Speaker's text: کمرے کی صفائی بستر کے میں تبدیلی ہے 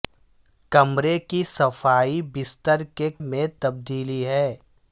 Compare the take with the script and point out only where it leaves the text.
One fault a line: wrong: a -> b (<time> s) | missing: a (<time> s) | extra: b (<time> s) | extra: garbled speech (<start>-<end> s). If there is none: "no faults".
no faults